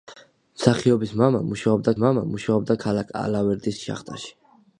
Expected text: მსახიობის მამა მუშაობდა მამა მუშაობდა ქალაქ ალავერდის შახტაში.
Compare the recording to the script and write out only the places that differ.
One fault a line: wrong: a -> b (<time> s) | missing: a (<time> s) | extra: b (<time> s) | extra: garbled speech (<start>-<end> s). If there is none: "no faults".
no faults